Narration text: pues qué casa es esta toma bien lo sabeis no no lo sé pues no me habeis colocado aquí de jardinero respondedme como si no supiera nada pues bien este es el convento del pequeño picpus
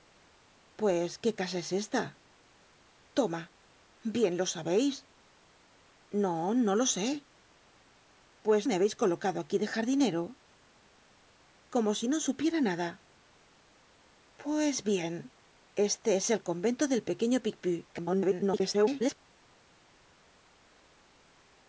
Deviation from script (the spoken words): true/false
true